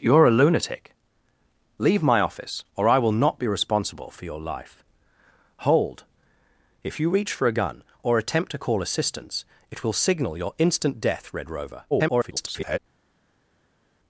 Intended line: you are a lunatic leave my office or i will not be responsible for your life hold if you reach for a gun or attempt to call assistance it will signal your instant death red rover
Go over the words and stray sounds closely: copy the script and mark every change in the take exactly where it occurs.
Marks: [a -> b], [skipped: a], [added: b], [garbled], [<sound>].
you are a lunatic leave my office or i will not be responsible for your life hold if you reach for a gun or attempt to call assistance it will signal your instant death red rover [garbled]